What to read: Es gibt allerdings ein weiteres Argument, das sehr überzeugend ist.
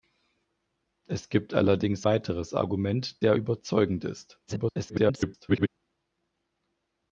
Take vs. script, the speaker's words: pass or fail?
fail